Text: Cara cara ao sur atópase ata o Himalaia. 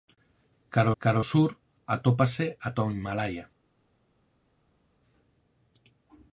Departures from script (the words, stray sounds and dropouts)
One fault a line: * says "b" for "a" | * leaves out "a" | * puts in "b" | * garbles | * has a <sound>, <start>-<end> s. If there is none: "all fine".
all fine